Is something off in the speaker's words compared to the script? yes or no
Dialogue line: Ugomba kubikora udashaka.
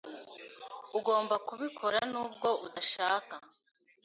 yes